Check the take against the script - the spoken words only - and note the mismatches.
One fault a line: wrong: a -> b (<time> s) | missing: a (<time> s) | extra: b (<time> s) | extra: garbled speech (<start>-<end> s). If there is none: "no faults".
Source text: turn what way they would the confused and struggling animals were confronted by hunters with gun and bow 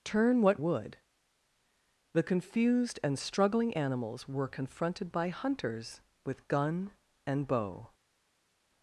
missing: way they (0.6 s)